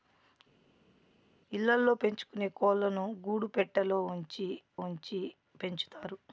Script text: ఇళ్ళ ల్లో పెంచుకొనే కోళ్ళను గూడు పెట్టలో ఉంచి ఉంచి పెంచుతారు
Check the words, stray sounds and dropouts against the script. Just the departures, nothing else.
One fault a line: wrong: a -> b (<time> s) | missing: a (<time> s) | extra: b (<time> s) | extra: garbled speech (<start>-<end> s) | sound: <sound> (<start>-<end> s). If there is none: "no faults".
no faults